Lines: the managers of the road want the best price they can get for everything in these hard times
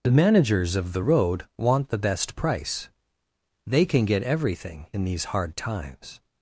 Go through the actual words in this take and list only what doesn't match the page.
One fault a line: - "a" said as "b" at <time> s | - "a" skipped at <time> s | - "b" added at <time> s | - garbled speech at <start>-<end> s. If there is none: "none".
- "for" skipped at 4.2 s